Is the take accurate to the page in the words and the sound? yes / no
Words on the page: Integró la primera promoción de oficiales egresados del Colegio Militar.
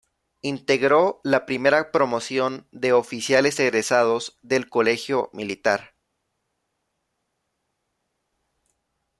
yes